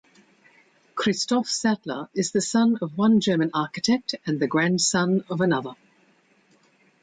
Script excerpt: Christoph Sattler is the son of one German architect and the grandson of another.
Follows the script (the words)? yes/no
yes